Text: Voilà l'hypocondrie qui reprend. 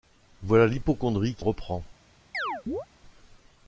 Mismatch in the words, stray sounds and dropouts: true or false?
true